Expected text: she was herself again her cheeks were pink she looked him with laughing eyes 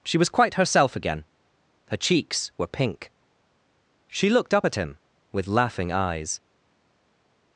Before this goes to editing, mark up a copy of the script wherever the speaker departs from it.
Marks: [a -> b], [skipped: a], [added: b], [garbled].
she was [added: quite] herself again her cheeks were pink she looked [added: up at] him with laughing eyes